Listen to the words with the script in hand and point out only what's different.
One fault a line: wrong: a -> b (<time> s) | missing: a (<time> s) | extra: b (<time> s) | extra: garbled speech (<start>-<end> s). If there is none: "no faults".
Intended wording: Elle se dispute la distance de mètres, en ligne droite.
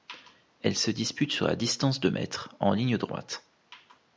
extra: sur (1.3 s)